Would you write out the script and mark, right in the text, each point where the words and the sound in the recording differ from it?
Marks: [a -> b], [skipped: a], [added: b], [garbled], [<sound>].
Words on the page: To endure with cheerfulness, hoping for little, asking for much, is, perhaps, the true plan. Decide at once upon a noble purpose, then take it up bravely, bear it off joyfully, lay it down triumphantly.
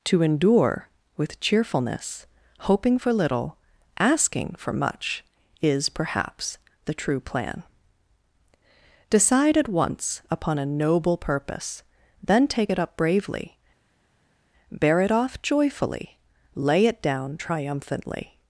To endure with cheerfulness, hoping for little, asking for much, is, perhaps, the true plan. Decide at once upon a noble purpose, then take it up bravely, bear it off joyfully, lay it down triumphantly.